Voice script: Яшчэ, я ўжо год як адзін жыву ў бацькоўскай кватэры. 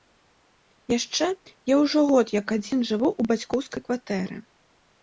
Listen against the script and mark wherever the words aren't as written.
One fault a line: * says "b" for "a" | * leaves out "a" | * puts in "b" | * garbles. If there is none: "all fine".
all fine